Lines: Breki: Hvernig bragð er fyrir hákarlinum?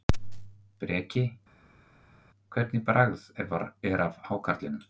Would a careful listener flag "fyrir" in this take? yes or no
yes